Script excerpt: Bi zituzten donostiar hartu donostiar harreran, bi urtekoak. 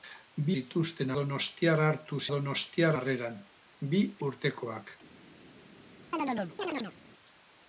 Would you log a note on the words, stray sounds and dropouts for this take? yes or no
yes